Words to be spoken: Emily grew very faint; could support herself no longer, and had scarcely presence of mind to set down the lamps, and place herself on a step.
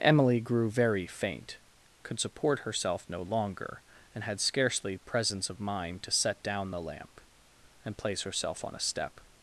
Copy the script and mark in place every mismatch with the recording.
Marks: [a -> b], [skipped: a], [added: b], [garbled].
Emily grew very faint; could support herself no longer, and had scarcely presence of mind to set down the [lamps, -> lamp] and place herself on a step.